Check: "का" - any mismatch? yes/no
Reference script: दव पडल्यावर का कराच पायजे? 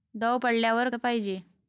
yes